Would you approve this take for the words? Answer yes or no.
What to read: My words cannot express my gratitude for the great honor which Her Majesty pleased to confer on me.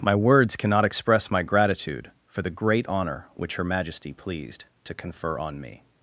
yes